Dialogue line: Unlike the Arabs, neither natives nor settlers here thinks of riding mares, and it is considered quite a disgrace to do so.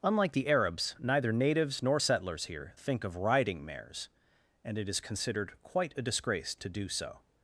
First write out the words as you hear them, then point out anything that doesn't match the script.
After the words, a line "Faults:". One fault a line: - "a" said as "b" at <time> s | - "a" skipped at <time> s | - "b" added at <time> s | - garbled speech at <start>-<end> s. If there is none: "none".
Unlike the Arabs, neither natives nor settlers here think of riding mares, and it is considered quite a disgrace to do so.
Faults:
- "thinks" said as "think" at 2.7 s